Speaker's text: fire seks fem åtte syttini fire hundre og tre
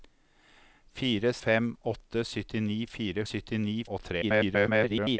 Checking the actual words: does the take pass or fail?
fail